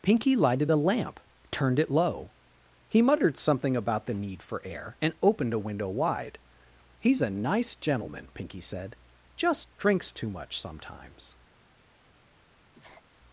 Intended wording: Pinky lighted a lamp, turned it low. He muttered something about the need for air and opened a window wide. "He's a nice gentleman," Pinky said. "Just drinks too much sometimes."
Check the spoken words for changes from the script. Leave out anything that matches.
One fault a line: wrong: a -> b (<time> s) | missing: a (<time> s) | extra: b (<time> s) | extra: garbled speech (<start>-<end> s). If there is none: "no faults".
no faults